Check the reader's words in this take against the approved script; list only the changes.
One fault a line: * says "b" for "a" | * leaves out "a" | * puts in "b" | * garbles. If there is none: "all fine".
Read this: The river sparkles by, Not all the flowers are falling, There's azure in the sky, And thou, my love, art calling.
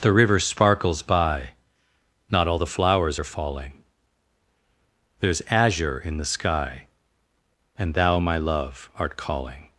all fine